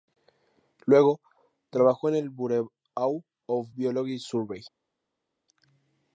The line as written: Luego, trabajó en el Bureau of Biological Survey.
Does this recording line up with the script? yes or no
yes